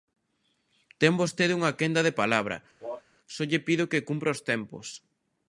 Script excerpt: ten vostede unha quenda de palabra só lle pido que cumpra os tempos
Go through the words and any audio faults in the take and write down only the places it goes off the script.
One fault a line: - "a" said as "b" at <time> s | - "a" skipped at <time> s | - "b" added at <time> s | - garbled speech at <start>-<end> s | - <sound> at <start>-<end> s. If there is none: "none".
- cough at 2.8-3.0 s